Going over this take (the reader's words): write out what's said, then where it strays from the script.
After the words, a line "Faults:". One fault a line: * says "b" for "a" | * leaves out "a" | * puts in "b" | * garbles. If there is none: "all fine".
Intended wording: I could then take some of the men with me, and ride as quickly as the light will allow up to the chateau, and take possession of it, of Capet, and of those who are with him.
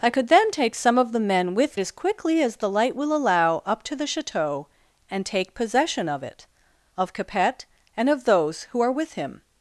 I could then take some of the men with as quickly as the light will allow up to the chateau, and take possession of it, of Capet, and of those who are with him.
Faults:
* leaves out "me and ride"